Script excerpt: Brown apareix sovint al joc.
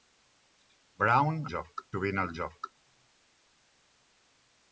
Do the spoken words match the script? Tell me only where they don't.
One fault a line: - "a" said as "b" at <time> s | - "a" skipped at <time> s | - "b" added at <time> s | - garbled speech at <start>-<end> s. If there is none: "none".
- "apareix" said as "joc" at 1.5 s